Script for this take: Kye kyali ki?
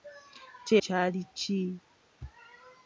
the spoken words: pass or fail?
pass